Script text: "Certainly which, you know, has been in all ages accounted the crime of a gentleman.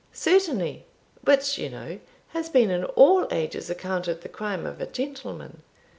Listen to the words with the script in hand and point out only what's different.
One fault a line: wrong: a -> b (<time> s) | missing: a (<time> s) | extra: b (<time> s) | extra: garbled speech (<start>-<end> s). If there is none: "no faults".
no faults